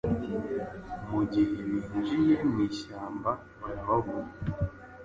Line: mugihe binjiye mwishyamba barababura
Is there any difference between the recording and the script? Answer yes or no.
no